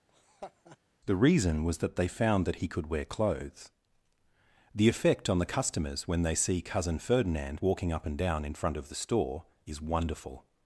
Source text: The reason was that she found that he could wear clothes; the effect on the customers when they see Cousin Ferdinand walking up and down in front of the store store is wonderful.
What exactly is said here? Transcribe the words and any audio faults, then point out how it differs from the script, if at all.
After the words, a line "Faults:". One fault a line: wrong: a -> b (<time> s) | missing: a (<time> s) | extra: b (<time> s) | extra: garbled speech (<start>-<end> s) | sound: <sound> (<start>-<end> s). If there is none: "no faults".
The reason was that they found that he could wear clothes; the effect on the customers when they see Cousin Ferdinand walking up and down in front of the store is wonderful.
Faults:
sound: laugh (0.1-0.8 s)
wrong: she -> they (2.0 s)
missing: store (9.5 s)